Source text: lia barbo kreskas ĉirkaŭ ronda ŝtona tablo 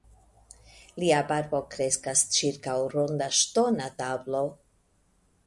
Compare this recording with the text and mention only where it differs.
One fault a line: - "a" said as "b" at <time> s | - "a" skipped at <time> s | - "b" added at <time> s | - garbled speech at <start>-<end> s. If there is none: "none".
none